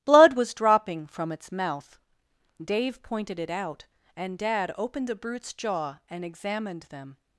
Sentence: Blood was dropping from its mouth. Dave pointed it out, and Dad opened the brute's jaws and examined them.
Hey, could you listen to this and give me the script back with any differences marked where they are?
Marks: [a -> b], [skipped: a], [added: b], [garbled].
Blood was dropping from its mouth. Dave pointed it out, and Dad opened the brute's [jaws -> jaw] and examined them.